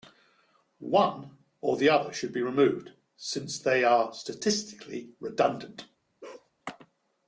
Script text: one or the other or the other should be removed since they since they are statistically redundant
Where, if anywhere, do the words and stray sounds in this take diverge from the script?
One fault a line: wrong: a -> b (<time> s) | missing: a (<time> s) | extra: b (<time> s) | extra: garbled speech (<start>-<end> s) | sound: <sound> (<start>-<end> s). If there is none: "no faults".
missing: or the other (2.1 s)
missing: since they (3.8 s)
sound: bark (6.2-6.5 s)